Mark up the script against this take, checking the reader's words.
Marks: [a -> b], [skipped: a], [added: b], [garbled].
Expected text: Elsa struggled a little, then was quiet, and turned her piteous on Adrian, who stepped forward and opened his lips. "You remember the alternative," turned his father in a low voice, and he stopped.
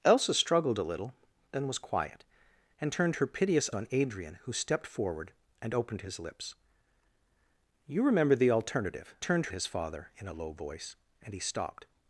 Elsa struggled a little, then was quiet, and turned her piteous on Adrian, who stepped forward and opened his lips. "You remember the alternative," turned his father in a low voice, and he stopped.